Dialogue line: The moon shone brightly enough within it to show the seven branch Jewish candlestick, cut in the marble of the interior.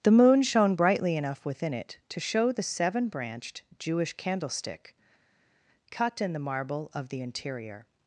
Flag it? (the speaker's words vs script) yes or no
yes